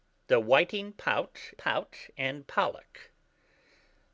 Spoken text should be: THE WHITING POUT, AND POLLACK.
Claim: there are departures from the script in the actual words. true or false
true